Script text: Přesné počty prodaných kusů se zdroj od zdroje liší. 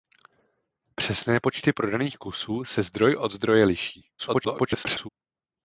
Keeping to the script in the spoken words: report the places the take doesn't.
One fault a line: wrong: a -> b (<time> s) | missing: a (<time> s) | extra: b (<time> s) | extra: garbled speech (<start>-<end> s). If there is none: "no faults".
extra: garbled speech (4.2-5.1 s)